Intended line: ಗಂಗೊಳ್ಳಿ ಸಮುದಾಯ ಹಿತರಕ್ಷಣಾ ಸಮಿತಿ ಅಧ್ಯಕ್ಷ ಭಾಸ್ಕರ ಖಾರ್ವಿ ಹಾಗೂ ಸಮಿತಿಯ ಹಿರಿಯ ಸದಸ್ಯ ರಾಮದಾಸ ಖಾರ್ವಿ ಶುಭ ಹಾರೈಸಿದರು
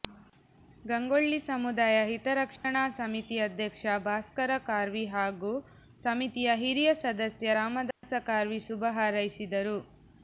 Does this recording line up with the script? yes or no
yes